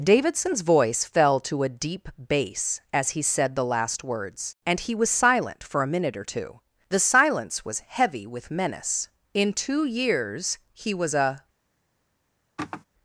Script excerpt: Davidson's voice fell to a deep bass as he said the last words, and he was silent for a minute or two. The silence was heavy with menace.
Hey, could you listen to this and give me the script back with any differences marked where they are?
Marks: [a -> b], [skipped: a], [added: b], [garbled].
Davidson's voice fell to a deep bass as he said the last words, and he was silent for a minute or two. The silence was heavy with menace. [added: In two years he was a]